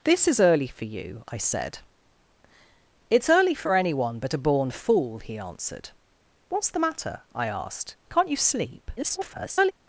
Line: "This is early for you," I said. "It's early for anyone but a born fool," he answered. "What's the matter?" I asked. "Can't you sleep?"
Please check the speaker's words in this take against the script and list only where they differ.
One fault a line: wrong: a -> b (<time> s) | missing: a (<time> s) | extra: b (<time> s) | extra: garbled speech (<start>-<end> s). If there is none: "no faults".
extra: garbled speech (9.0-9.7 s)